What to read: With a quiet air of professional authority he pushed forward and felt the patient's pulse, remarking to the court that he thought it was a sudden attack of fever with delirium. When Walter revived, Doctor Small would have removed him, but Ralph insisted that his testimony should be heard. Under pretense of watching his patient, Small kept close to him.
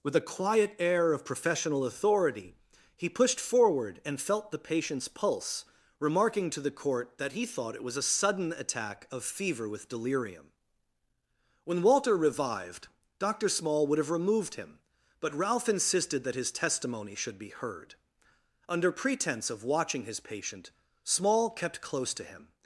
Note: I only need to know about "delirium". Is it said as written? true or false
true